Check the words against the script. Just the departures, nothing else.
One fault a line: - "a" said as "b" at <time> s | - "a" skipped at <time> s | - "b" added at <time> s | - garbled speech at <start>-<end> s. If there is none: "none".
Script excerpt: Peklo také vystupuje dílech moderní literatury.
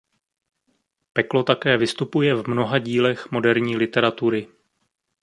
- "v mnoha" added at 2.3 s